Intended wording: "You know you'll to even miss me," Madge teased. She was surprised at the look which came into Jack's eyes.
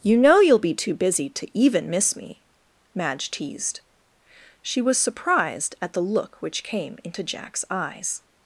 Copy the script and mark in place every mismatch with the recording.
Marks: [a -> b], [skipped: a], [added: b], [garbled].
"You know you'll [added: be too busy] to even miss me," Madge teased. She was surprised at the look which came into Jack's eyes.